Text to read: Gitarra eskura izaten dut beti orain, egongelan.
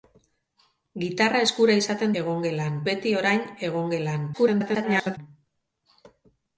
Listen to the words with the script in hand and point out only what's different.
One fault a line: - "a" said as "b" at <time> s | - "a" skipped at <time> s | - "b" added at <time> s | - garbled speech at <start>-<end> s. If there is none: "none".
- "dut" said as "egongelan" at 2.2 s
- garbled speech at 4.3-5.2 s